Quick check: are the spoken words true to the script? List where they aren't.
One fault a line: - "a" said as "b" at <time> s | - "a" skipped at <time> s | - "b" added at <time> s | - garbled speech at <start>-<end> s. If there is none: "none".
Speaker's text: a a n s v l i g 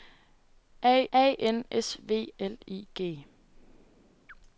none